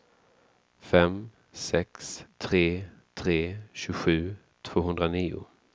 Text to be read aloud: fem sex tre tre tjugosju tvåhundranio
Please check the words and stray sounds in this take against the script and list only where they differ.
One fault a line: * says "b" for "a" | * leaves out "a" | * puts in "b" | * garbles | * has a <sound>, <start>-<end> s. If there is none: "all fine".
all fine